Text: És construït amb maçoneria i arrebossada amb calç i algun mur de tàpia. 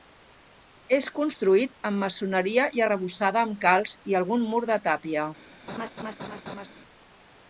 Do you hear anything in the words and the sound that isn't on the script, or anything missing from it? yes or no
yes